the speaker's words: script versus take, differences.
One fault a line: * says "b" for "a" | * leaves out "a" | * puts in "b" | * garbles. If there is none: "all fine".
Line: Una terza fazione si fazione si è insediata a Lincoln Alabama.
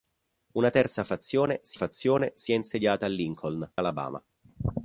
all fine